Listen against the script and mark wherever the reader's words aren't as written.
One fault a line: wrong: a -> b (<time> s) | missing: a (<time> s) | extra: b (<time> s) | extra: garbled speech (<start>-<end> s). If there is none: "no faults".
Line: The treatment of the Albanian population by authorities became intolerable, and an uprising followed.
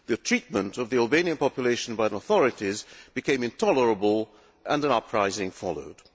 no faults